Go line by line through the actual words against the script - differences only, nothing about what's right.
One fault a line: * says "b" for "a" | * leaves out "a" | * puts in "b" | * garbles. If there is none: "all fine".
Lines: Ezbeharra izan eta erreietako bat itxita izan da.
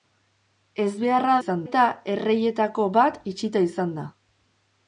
all fine